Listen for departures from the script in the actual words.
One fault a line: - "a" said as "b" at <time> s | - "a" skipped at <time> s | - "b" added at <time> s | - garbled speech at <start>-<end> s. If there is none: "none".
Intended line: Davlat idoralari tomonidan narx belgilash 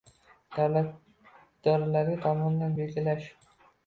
- "narx" skipped at 2.8 s